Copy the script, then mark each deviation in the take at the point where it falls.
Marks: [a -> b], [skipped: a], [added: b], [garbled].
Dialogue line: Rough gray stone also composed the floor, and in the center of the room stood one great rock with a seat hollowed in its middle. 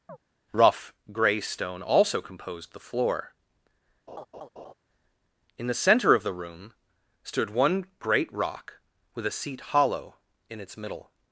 Rough gray stone also composed the floor, [skipped: and] in the center of the room stood one great rock with a seat [hollowed -> hollow] in its middle.